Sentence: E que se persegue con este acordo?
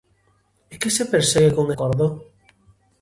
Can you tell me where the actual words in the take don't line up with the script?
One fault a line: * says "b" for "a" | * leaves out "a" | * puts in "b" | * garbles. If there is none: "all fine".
* leaves out "este"